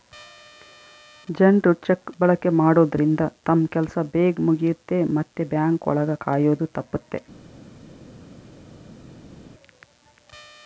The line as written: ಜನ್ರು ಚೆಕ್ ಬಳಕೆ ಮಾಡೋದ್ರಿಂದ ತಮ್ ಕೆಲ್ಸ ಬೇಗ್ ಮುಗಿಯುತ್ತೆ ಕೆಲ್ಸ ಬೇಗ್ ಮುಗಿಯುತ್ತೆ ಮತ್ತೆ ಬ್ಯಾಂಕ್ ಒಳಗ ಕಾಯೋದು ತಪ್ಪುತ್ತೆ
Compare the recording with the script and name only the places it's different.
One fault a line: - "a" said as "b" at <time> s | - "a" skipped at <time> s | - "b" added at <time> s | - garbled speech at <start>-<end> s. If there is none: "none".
- "ಕೆಲ್ಸ ಬೇಗ್ ಮುಗಿಯುತ್ತೆ" skipped at 5.0 s